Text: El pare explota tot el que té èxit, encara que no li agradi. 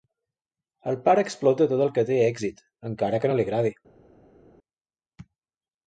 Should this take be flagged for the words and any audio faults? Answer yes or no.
no